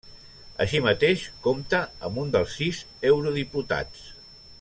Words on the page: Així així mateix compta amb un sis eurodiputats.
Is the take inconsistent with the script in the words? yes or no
yes